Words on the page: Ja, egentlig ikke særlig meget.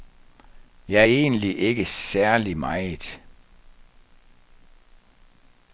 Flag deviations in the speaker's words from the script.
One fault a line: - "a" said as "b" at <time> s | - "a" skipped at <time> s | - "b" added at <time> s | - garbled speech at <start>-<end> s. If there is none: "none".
none